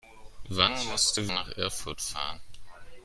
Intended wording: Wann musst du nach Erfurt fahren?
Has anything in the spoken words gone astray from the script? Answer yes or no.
no